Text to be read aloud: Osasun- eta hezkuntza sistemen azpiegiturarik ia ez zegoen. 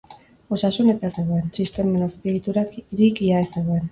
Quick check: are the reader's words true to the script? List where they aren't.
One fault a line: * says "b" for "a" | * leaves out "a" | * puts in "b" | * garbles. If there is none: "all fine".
* says "zegoen" for "hezkuntza"